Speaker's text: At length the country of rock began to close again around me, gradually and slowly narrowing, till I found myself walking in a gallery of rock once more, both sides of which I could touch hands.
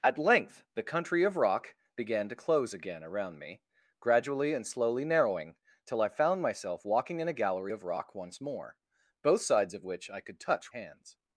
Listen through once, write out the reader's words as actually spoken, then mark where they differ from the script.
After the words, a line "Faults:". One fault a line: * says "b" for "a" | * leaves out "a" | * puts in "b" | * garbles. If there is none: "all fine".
At length the country of rock began to close again around me, gradually and slowly narrowing, till I found myself walking in a gallery of rock once more, both sides of which I could touch hands.
Faults:
all fine